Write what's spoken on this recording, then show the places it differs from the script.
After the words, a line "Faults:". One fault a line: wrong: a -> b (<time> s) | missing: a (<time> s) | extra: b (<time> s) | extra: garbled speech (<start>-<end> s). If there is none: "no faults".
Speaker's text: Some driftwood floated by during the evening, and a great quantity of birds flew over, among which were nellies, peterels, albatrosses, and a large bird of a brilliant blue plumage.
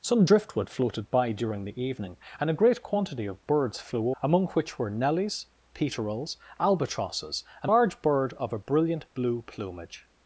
Some driftwood floated by during the evening, and a great quantity of birds flew among which were nellies, peterels, albatrosses, and large bird of a brilliant blue plumage.
Faults:
missing: over (4.1 s)
missing: a (7.7 s)